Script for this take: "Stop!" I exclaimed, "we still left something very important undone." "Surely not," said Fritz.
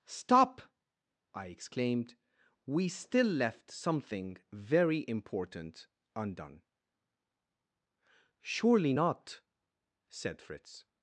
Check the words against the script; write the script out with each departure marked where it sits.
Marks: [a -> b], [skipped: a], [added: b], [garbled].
"Stop!" I exclaimed, "we still left something very important undone." "Surely not," said Fritz.